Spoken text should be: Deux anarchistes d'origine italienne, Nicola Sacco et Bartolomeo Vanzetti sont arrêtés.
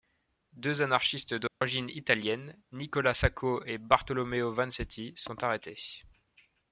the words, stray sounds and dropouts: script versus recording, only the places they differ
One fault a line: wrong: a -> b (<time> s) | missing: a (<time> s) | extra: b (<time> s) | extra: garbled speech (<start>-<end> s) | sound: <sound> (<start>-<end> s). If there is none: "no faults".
sound: dropout (1.5-1.6 s)